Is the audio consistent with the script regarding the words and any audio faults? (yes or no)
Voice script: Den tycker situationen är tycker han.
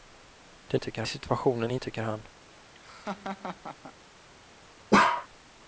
no